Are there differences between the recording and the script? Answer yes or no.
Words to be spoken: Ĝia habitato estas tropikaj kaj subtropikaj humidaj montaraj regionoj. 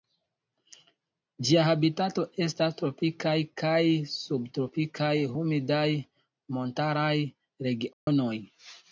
no